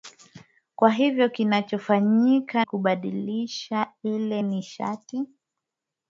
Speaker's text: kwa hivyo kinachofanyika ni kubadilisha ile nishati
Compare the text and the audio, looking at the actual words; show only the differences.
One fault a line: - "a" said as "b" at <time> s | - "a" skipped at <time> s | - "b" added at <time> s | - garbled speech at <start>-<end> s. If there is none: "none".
- "ni" skipped at 2.6 s